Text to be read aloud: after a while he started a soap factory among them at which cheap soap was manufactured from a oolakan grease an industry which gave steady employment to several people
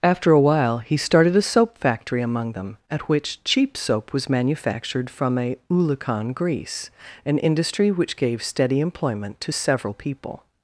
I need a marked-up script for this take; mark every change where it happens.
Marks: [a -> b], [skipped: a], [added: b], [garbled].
after a while he started a soap factory among them at which cheap soap was manufactured from a oolakan grease an industry which gave steady employment to several people